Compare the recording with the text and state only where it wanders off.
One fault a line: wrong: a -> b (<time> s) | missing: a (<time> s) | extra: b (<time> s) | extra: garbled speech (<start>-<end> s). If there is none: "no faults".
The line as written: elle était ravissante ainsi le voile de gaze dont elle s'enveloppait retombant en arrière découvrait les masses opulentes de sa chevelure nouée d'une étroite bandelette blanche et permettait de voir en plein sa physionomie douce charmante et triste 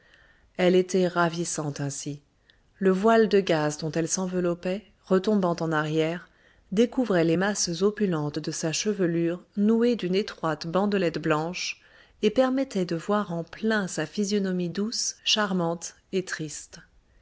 no faults